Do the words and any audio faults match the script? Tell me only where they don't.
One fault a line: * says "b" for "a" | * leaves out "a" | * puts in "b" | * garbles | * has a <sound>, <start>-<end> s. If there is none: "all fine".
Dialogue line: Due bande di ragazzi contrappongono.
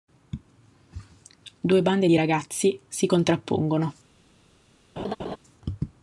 * puts in "si"
* has a laugh, 5.0-5.4 s